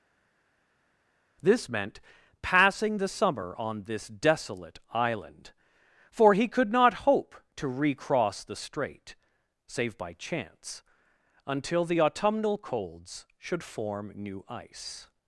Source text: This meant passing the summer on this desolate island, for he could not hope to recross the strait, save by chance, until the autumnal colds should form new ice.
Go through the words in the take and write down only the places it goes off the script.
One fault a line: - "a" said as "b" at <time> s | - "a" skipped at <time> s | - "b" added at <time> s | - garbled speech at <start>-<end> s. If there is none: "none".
none